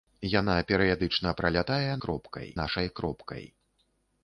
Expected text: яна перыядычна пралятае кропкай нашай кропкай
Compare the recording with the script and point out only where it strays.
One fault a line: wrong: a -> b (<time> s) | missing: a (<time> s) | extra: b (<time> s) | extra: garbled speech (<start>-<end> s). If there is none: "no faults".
no faults